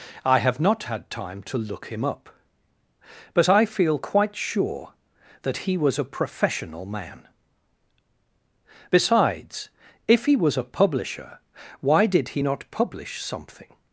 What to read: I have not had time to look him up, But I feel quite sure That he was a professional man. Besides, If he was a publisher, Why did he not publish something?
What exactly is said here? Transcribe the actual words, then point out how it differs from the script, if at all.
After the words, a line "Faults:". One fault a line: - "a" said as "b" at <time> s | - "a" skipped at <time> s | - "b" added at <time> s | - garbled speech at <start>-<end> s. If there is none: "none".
I have not had time to look him up, But I feel quite sure That he was a professional man. Besides, If he was a publisher, Why did he not publish something?
Faults:
none